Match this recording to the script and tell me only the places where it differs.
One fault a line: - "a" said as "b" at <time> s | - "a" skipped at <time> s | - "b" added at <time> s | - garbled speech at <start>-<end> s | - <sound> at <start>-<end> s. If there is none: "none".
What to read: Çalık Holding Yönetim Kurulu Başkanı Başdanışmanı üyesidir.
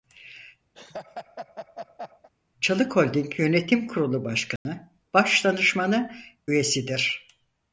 - laugh at 0.7-2.3 s
- dropout at 4.6-4.7 s